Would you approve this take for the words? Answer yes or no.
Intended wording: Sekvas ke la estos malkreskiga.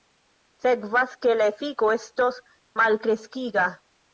no